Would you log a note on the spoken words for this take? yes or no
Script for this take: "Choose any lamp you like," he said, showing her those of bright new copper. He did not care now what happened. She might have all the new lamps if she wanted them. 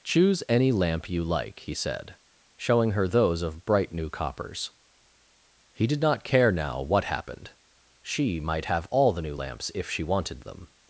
yes